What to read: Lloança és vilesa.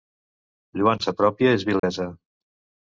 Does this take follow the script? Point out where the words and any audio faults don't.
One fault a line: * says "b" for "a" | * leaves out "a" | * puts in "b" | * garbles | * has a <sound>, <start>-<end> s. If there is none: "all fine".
* puts in "pròpia"
* has a dropout, 1.8-1.8 s